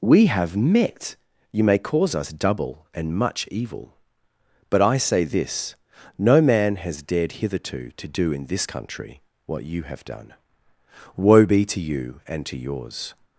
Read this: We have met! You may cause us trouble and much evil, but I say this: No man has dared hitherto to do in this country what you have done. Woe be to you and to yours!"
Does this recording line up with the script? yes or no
no